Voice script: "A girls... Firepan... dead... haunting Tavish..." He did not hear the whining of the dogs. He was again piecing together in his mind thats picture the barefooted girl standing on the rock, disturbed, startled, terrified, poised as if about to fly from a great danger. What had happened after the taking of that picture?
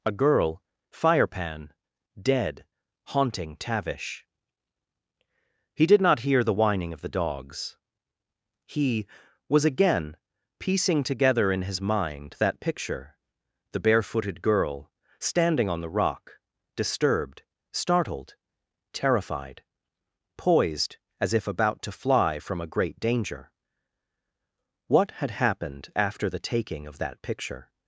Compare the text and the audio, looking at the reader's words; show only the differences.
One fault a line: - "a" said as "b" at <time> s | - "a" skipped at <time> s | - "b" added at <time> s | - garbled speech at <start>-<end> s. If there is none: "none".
- "girls" said as "girl" at 0.1 s
- "thats" said as "that" at 12.4 s